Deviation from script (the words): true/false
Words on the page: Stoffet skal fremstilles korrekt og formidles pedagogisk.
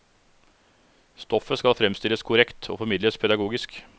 false